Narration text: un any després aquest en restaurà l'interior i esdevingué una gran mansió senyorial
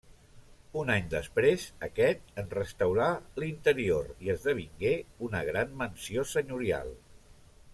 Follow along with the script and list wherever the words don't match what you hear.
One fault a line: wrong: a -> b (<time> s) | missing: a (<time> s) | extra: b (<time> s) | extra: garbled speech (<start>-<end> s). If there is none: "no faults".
no faults